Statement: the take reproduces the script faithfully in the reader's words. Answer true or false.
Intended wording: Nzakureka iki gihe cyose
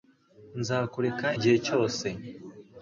false